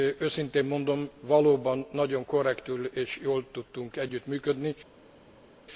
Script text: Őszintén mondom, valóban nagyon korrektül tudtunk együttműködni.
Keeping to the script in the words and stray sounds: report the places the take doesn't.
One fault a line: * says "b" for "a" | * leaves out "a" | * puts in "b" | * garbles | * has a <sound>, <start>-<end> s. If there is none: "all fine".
* puts in "és jól"